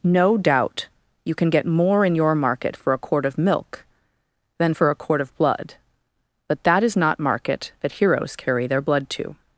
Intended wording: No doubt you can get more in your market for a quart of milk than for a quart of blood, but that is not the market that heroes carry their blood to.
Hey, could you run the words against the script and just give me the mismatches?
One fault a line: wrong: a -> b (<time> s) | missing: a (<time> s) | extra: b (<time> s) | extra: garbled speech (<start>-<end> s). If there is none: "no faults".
missing: the (7.2 s)